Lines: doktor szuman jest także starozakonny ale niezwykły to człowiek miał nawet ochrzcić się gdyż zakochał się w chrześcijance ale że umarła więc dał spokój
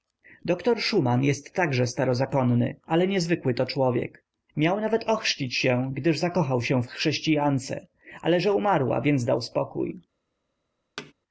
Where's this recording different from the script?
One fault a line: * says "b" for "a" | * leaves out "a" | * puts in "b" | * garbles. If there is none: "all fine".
all fine